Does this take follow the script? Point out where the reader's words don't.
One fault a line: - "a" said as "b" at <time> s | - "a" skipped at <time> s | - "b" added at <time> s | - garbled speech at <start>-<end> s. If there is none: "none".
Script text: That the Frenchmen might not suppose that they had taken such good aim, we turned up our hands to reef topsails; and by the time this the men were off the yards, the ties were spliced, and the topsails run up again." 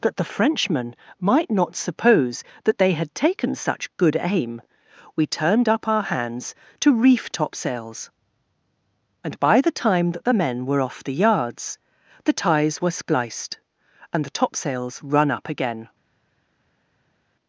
- "this" said as "that" at 10.1 s